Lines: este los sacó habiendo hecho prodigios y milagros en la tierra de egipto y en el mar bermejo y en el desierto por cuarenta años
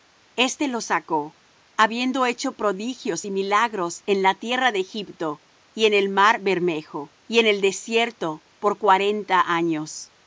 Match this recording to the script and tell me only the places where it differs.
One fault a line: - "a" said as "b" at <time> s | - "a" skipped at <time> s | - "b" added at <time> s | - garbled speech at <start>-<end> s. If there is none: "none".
none